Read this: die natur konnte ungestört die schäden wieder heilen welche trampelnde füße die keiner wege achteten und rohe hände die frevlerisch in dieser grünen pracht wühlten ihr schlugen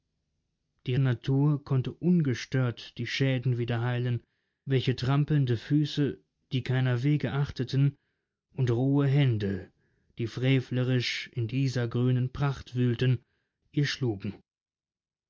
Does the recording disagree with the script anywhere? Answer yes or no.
no